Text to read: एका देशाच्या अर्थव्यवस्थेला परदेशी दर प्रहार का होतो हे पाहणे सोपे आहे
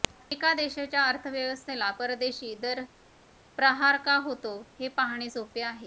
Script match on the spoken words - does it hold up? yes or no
yes